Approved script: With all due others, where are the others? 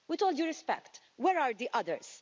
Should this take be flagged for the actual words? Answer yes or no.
yes